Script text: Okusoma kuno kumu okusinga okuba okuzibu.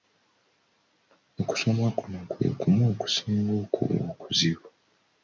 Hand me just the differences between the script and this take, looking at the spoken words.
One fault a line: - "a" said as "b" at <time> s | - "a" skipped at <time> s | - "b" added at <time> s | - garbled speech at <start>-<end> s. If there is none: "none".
- "kwe" added at 2.3 s